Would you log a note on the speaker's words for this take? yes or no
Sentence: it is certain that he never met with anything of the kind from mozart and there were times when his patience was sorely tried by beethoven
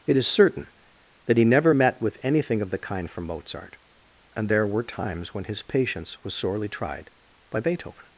no